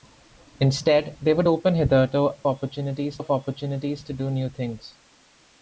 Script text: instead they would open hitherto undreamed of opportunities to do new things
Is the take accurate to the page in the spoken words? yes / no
no